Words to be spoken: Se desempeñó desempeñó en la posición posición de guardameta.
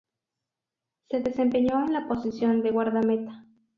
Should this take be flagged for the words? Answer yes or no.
yes